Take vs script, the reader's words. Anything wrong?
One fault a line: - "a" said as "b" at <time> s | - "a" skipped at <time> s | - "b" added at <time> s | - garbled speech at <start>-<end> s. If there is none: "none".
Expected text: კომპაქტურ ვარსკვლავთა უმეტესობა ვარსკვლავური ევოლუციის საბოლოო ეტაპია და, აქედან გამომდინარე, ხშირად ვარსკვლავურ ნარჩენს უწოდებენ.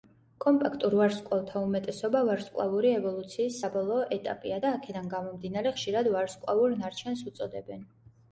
none